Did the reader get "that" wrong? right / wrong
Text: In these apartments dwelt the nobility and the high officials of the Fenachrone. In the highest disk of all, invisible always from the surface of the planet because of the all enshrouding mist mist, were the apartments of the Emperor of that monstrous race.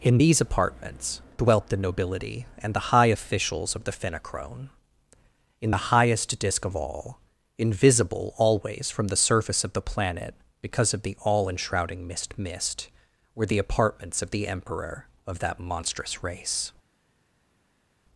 right